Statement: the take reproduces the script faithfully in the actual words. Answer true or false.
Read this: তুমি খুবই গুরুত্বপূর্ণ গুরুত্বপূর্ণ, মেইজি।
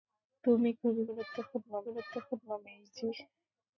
true